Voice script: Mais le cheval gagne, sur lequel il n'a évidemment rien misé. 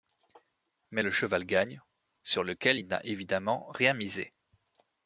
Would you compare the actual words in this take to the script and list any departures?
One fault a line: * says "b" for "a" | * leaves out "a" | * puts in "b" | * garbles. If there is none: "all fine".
all fine